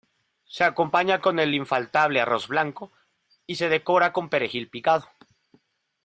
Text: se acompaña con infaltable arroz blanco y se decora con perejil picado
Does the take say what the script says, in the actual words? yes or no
no